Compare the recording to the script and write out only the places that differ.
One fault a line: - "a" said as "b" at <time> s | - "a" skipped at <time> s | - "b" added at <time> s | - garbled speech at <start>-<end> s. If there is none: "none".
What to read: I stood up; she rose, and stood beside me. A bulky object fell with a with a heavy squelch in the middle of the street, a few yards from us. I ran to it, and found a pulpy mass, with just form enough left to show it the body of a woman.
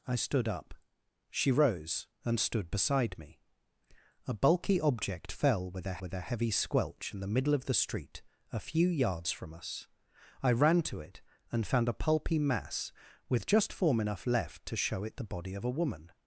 none